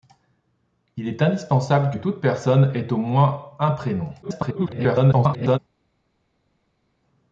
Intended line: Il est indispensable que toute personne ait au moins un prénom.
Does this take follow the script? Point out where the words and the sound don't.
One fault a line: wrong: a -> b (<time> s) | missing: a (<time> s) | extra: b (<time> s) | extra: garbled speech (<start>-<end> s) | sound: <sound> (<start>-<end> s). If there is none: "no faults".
extra: garbled speech (4.2-5.6 s)